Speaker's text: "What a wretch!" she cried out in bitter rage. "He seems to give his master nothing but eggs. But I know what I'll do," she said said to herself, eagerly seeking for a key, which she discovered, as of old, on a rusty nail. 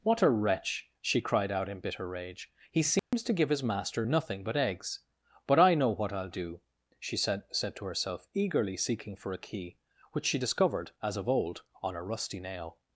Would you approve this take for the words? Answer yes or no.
yes